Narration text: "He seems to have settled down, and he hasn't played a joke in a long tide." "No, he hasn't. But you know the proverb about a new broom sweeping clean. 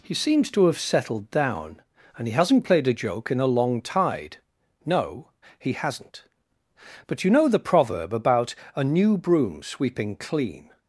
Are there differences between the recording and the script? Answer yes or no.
no